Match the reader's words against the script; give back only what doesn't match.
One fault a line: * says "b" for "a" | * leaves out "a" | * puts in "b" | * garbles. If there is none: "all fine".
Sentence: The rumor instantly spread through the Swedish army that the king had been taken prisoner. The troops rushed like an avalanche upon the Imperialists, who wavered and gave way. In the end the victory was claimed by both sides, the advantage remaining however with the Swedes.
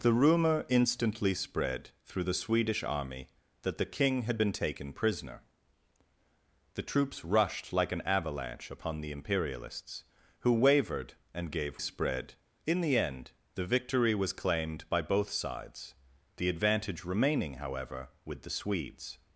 * says "spread" for "way"